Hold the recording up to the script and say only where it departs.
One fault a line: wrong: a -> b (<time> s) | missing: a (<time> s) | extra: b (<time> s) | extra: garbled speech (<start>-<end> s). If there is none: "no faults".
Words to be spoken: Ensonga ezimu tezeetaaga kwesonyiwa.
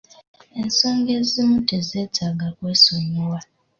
no faults